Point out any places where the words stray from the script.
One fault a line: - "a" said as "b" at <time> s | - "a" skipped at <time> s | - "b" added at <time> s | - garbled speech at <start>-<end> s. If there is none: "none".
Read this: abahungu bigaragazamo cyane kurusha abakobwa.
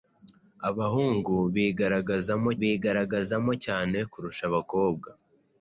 - "bigaragazamo" added at 2.6 s